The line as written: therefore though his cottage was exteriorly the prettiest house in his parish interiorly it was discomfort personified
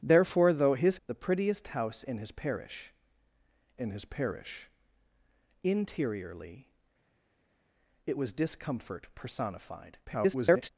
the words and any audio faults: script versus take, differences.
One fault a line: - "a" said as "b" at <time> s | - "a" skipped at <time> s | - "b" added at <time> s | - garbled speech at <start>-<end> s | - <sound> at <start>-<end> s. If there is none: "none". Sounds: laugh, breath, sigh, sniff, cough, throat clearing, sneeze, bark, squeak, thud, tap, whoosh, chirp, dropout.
- "cottage was exteriorly the prettiest house" said as "the prettiest house in his parish" at 1.1 s
- garbled speech at 10.1-10.7 s